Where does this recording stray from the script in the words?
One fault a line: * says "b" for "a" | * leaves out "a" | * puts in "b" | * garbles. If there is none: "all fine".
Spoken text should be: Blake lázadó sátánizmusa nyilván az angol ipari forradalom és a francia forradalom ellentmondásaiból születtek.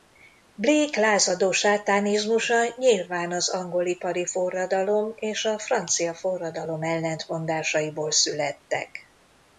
all fine